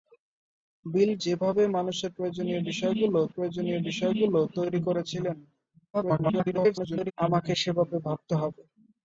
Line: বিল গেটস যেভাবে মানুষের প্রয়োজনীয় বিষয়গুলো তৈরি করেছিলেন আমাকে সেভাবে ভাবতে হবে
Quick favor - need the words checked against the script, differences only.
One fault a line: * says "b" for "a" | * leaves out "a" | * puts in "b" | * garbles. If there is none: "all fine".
* leaves out "গেটস"
* puts in "প্রয়োজনীয় বিষয়গুলো"
* garbles